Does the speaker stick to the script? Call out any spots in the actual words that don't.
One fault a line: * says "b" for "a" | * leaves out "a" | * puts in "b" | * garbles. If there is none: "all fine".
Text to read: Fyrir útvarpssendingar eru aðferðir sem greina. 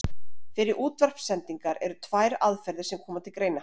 * puts in "tvær"
* puts in "koma til"